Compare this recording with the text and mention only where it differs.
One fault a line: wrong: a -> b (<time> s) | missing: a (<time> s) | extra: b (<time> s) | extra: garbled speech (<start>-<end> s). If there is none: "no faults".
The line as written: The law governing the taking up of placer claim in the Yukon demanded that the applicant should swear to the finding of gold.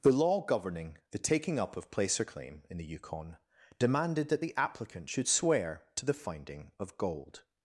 no faults